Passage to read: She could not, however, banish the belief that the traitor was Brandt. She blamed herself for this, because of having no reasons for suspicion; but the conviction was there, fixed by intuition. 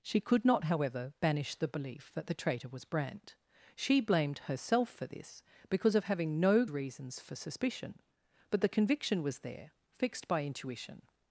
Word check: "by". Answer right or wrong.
right